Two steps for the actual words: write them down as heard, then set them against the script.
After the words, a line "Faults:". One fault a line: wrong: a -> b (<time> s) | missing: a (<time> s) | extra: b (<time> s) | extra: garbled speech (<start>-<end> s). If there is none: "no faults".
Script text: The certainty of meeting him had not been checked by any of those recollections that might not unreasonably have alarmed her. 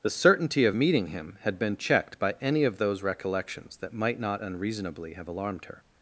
The certainty of meeting him had been checked by any of those recollections that might not unreasonably have alarmed her.
Faults:
missing: not (1.6 s)